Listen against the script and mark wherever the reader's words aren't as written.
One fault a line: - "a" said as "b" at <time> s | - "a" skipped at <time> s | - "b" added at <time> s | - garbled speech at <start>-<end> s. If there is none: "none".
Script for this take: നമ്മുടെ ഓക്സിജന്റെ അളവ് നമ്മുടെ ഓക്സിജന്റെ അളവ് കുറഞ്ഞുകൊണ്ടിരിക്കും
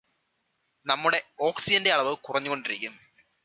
- "നമ്മുടെ ഓക്സിജന്റെ അളവ്" skipped at 2.1 s